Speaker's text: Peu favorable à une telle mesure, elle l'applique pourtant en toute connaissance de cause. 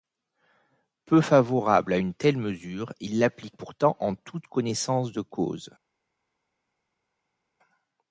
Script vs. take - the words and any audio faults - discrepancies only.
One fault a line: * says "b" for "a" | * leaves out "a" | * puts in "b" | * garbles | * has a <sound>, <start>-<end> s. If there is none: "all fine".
* says "il" for "elle"